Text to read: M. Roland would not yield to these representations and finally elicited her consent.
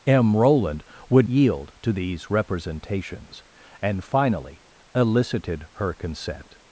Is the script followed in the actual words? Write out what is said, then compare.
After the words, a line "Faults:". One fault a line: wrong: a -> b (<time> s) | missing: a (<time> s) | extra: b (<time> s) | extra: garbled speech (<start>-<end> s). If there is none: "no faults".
M. Roland would yield to these representations and finally elicited her consent.
Faults:
missing: not (1.3 s)